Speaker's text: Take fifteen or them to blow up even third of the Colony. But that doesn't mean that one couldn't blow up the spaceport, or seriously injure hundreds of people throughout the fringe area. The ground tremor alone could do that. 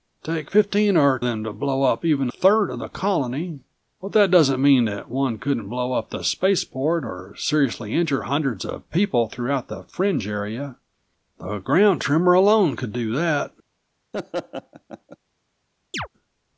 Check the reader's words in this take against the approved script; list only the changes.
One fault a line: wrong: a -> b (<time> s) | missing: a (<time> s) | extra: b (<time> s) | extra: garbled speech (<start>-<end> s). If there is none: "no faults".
no faults